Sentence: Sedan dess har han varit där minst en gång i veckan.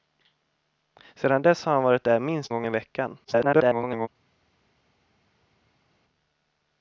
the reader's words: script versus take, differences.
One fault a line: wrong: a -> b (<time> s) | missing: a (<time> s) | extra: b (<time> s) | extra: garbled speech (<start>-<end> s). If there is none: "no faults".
missing: en (2.5 s)
extra: garbled speech (3.2-4.1 s)